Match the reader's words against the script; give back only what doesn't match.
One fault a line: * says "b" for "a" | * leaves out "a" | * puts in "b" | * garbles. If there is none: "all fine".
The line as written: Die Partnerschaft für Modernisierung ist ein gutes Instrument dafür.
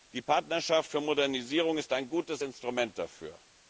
all fine